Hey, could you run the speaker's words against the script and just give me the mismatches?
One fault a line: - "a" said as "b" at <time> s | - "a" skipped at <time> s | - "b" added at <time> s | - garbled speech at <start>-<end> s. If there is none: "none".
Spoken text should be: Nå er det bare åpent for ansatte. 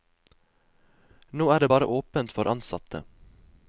none